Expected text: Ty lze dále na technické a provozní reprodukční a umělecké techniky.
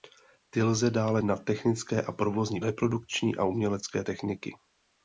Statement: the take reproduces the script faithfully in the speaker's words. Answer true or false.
true